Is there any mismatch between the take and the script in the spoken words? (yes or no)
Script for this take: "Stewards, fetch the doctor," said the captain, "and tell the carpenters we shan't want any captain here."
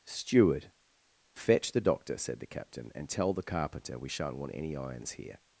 yes